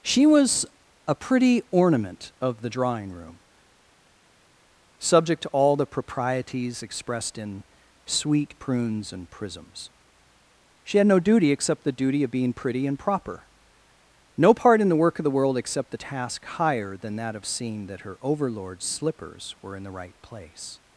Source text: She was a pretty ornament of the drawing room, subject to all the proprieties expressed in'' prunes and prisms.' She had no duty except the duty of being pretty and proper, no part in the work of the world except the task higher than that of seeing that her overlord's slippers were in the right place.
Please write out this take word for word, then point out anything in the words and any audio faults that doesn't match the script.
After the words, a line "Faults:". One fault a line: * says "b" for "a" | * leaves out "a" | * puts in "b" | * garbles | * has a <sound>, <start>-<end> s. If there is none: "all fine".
She was a pretty ornament of the drawing room, subject to all the proprieties expressed in'' sweet prunes and prisms.' She had no duty except the duty of being pretty and proper, no part in the work of the world except the task higher than that of seeing that her overlord's slippers were in the right place.
Faults:
* puts in "sweet"